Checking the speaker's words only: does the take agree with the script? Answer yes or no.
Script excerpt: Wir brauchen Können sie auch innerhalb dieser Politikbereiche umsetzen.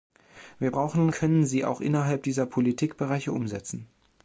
yes